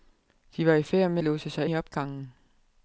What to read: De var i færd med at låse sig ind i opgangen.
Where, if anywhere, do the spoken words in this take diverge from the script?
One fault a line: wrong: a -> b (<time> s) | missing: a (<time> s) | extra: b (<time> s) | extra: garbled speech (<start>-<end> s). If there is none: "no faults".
missing: at (1.2 s)
missing: ind (1.7 s)